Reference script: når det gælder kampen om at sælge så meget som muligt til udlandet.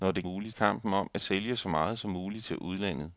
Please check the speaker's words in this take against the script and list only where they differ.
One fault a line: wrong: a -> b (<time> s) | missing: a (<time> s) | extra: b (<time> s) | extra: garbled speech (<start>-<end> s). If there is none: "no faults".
wrong: gælder -> muligt (0.2 s)